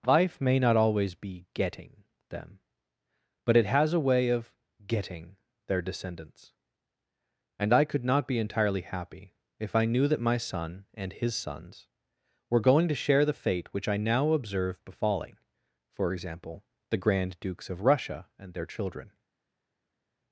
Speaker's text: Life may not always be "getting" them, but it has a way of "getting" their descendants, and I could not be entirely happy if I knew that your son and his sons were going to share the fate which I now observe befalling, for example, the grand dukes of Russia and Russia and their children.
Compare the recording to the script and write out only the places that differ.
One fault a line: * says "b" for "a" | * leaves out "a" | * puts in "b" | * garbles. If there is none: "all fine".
* says "my" for "your"
* leaves out "Russia and"